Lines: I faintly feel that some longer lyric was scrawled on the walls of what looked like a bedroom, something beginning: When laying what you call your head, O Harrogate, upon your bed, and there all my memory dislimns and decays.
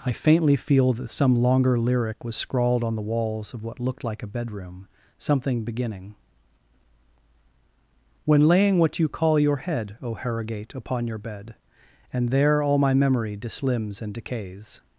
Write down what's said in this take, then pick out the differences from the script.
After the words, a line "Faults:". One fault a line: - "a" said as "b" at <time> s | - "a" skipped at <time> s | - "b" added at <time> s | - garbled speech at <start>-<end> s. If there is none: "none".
I faintly feel that some longer lyric was scrawled on the walls of what looked like a bedroom, something beginning: When laying what you call your head, O Harrogate, upon your bed, and there all my memory dislimns and decays.
Faults:
none